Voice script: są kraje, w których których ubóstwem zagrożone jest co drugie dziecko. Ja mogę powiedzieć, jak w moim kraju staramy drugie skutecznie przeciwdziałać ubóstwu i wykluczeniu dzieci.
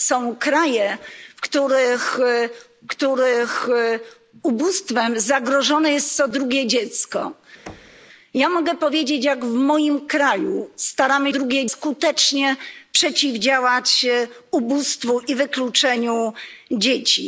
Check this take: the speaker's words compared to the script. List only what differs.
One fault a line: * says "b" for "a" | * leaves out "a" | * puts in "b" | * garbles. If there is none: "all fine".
all fine